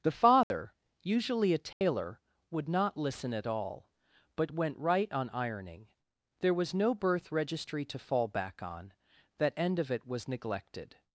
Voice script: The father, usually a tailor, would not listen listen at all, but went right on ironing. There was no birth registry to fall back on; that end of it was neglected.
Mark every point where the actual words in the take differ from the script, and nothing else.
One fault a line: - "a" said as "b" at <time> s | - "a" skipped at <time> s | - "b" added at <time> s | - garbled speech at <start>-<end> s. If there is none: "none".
- "listen" skipped at 3.3 s